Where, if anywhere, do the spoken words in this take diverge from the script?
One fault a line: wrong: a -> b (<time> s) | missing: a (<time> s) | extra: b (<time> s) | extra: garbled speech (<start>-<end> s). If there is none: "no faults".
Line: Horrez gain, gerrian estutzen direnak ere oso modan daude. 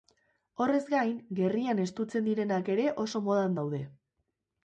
no faults